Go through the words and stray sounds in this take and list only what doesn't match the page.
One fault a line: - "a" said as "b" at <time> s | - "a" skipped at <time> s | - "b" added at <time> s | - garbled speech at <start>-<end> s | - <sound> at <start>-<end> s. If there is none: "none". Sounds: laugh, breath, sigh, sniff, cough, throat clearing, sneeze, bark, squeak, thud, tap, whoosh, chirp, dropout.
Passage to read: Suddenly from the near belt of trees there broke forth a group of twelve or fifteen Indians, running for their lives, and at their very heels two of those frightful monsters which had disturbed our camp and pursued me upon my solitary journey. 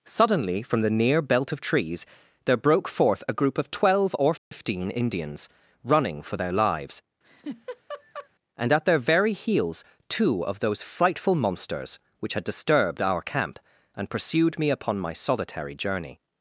- dropout at 4.4-4.5 s
- laugh at 7.2-8.3 s